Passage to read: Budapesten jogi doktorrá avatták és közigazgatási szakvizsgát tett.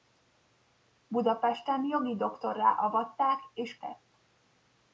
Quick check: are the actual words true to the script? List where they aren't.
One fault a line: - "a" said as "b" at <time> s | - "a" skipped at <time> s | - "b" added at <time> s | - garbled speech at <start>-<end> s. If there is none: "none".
- "közigazgatási szakvizsgát" skipped at 3.8 s